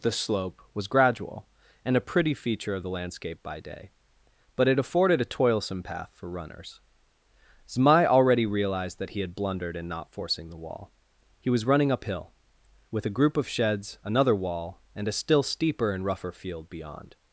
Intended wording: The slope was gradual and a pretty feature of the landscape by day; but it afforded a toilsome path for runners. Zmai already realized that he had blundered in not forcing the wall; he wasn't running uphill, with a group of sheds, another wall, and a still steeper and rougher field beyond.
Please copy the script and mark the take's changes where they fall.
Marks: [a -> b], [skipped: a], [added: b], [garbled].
The slope was gradual and a pretty feature of the landscape by day; but it afforded a toilsome path for runners. Zmai already realized that he had blundered in not forcing the wall; he [wasn't -> was] running uphill, with a group of sheds, another wall, and a still steeper and rougher field beyond.